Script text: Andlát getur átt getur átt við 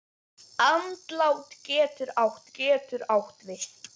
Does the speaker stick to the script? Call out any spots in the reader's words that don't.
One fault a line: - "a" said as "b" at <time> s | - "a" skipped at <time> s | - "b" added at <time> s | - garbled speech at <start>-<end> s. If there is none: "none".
none